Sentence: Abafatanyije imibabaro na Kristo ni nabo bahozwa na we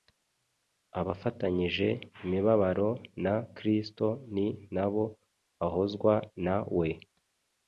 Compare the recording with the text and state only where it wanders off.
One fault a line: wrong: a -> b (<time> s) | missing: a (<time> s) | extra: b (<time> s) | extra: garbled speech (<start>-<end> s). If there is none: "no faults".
no faults